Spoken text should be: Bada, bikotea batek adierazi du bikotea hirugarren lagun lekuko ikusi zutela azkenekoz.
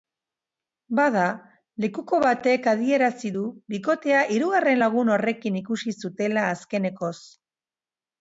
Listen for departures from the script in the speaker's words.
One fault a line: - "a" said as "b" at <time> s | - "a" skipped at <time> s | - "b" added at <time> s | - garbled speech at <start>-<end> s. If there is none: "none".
- "bikotea" said as "lekuko" at 1.8 s
- "lekuko" said as "horrekin" at 5.1 s